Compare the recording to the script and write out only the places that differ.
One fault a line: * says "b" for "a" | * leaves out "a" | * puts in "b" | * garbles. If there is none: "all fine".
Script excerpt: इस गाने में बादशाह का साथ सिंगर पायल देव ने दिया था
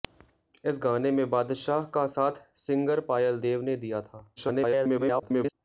* garbles